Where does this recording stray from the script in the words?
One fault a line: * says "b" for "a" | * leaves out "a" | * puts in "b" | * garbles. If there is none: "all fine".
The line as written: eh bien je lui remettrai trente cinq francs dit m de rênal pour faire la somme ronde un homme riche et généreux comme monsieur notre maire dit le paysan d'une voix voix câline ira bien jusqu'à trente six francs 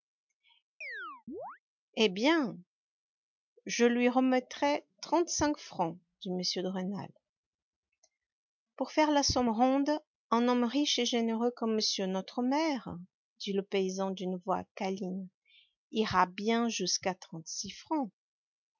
* leaves out "voix"